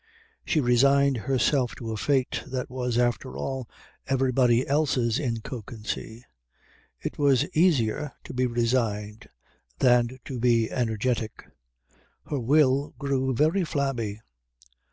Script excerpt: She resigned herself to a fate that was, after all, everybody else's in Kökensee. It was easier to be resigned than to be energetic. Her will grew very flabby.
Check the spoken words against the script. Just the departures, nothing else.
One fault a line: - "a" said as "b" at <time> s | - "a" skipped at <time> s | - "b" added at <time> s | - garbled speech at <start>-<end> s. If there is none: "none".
none